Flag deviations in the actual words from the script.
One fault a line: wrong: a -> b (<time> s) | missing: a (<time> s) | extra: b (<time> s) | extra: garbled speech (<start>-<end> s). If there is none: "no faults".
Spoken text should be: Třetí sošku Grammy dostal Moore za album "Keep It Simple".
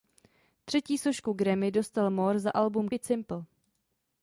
missing: Keep (2.9 s)